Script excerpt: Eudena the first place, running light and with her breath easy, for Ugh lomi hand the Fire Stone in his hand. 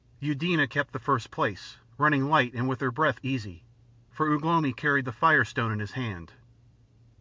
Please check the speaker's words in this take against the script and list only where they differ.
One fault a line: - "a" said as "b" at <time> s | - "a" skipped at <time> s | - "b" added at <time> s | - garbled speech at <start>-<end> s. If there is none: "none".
- "kept" added at 0.7 s
- "hand" said as "carried" at 4.7 s